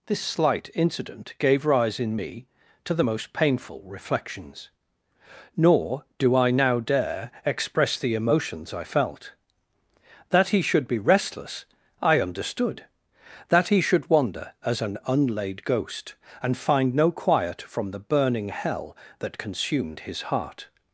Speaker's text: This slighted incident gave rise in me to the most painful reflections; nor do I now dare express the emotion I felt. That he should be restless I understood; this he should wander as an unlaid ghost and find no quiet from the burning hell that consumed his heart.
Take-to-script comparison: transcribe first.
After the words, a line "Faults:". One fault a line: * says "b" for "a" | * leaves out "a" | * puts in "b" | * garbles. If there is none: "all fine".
This slight incident gave rise in me to the most painful reflections; nor do I now dare express the emotions I felt. That he should be restless I understood; that he should wander as an unlaid ghost and find no quiet from the burning hell that consumed his heart.
Faults:
* says "slight" for "slighted"
* says "emotions" for "emotion"
* says "that" for "this"